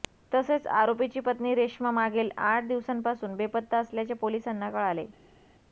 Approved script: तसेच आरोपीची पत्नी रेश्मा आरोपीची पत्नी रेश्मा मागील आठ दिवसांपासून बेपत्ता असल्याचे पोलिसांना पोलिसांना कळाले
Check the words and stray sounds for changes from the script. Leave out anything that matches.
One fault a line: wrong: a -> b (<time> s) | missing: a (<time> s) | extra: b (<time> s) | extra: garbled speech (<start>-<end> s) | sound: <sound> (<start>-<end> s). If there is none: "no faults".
missing: आरोपीची पत्नी रेश्मा (1.9 s)
missing: पोलिसांना (4.7 s)